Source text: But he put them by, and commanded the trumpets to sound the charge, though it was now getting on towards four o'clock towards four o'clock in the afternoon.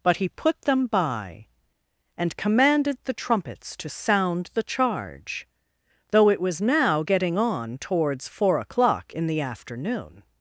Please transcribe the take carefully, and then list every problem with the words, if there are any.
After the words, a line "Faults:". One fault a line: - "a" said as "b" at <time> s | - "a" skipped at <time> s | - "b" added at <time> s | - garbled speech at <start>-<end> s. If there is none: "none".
But he put them by, and commanded the trumpets to sound the charge, though it was now getting on towards four o'clock in the afternoon.
Faults:
- "towards four o'clock" skipped at 9.1 s